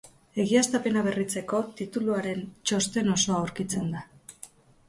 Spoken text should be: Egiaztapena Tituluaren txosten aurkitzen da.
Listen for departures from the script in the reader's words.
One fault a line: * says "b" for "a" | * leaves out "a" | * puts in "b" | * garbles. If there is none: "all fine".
* puts in "Berritzeko"
* puts in "osoa"